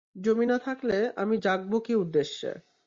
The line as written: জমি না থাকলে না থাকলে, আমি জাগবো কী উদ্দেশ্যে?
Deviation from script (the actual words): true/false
true